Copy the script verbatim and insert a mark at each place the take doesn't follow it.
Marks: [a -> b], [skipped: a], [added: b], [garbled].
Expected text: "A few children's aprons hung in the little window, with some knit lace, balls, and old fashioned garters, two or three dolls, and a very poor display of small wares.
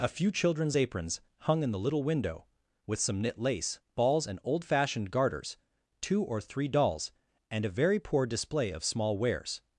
"A few children's aprons hung in the little window, with some knit lace, balls, and old fashioned garters, two or three dolls, and a very poor display of small wares.